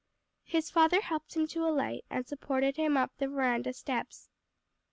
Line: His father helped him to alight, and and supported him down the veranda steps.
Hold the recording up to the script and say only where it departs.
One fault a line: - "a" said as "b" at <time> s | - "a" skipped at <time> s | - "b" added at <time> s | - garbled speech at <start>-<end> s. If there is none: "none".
- "and" skipped at 2.3 s
- "down" said as "up" at 3.0 s